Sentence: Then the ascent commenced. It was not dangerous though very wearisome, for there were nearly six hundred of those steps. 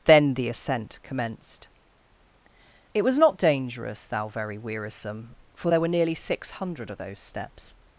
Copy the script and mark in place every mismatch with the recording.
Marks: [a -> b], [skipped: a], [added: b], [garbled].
Then the ascent commenced. It was not dangerous [though -> thou] very wearisome, for there were nearly six hundred of those steps.